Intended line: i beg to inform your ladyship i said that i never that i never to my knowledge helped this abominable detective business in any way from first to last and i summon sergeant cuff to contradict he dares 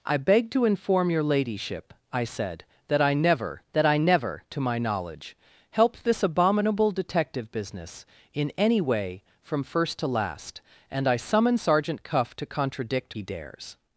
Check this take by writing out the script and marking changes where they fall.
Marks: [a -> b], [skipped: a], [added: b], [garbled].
i beg to inform your ladyship i said that i never that i never to my knowledge helped this abominable detective business in any way from first to last and i summon sergeant cuff to contradict he dares